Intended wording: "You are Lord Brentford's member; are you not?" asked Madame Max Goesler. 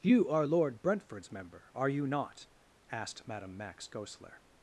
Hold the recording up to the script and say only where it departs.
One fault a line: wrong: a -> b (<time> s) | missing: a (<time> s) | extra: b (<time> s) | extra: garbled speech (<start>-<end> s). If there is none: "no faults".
no faults